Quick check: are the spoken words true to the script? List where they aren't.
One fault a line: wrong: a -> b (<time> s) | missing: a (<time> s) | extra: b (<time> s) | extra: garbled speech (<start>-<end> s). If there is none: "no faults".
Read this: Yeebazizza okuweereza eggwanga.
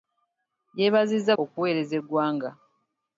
no faults